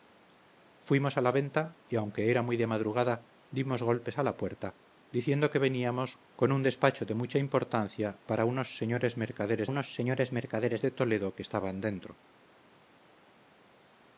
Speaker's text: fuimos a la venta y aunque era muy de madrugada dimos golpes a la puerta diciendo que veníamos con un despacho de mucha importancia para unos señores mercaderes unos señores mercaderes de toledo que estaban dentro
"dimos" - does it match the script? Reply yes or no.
yes